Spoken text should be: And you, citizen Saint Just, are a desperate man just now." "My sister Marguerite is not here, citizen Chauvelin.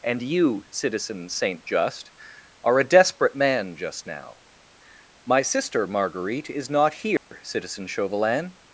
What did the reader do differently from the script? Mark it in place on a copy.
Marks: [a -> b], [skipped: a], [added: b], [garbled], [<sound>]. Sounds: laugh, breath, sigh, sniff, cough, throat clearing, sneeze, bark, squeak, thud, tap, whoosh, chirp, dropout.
And you, citizen Saint Just, are a desperate man just now." "My sister Marguerite is not here, [dropout] citizen Chauvelin.